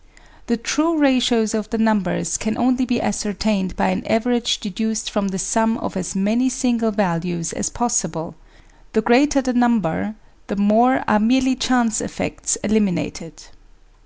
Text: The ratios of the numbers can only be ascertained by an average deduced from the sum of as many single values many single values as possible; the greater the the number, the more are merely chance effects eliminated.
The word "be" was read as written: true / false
true